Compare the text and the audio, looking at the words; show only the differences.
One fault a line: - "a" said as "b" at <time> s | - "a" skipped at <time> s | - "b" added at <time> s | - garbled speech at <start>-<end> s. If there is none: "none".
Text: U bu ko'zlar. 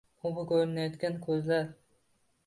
- "ko'rinayotgan" added at 0.5 s